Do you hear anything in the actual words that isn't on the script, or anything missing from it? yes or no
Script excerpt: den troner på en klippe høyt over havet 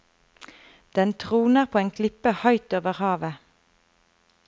no